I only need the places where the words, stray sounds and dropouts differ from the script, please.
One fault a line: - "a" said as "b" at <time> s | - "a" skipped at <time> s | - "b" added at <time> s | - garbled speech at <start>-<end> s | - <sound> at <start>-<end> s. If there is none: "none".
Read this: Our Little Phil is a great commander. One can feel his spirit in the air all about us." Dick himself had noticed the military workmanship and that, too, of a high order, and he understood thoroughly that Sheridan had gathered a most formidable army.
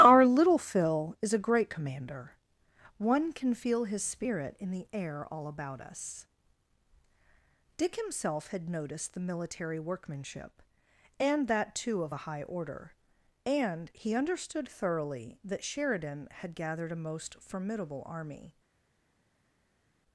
none